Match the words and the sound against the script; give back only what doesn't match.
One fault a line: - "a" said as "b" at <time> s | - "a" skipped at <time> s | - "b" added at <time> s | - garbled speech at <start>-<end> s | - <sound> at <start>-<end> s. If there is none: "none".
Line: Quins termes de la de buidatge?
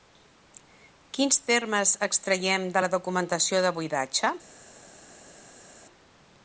- "extraiem" added at 2.1 s
- "documentació" added at 2.9 s